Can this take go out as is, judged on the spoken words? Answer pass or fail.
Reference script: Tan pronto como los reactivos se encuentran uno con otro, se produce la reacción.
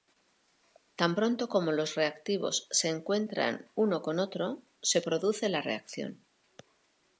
pass